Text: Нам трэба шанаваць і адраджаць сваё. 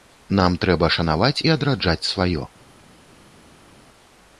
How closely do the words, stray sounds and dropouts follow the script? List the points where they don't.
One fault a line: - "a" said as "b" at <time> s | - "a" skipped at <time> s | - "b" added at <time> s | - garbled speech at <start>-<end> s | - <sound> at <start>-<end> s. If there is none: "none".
none